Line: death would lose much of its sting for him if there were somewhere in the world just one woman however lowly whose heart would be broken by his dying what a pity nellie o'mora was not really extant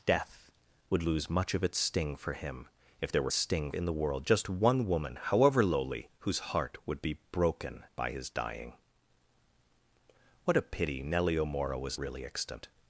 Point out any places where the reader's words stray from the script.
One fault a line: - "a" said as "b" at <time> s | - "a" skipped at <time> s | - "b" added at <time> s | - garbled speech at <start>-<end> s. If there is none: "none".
- "somewhere" said as "sting" at 3.3 s
- "not" skipped at 12.0 s